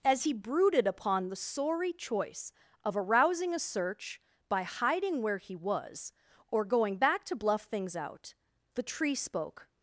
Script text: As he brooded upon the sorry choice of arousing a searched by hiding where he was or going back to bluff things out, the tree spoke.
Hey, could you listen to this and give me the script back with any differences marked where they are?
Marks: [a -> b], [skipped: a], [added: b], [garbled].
As he brooded upon the sorry choice of arousing a [searched -> search] by hiding where he was or going back to bluff things out, the tree spoke.